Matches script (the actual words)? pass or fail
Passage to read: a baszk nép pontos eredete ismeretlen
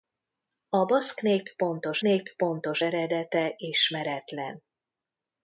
fail